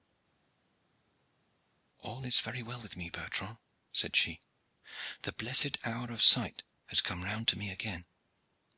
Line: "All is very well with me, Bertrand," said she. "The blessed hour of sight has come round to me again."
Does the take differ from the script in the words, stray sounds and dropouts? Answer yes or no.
no